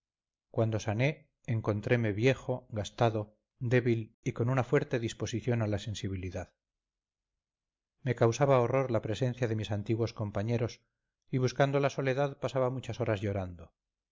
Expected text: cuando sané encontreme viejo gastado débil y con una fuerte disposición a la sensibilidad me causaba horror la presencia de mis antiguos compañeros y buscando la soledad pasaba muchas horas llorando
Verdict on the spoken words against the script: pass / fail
pass